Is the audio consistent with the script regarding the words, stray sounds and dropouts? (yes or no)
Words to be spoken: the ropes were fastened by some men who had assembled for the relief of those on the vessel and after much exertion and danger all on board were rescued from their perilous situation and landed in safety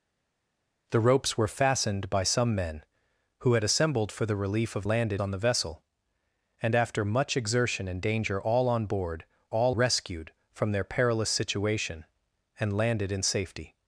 no